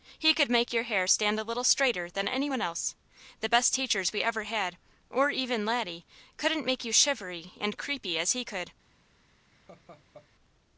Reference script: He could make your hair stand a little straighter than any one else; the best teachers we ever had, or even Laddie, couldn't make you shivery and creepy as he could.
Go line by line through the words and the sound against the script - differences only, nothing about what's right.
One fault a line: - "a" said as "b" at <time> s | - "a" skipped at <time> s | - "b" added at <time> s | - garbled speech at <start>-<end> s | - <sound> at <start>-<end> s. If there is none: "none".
- laugh at 9.5-10.3 s